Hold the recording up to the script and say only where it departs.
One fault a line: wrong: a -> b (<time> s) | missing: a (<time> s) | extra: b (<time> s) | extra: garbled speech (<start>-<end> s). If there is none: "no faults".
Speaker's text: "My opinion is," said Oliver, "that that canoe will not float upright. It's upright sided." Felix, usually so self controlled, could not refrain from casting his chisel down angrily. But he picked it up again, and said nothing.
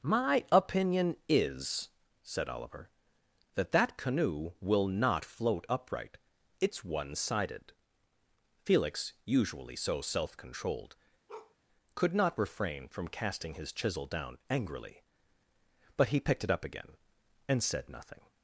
wrong: upright -> one (6.8 s)